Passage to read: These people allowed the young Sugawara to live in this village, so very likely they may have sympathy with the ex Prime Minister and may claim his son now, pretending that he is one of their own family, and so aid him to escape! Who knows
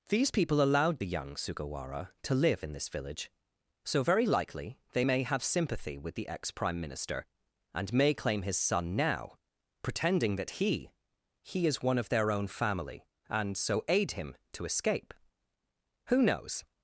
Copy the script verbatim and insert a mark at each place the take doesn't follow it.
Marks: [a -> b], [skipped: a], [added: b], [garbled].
These people allowed the young Sugawara to live in this village, so very likely they may have sympathy with the ex Prime Minister and may claim his son now, pretending that he [added: he] is one of their own family, and so aid him to escape! Who knows